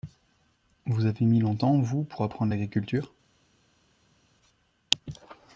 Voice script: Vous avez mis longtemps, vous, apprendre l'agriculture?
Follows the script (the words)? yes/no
no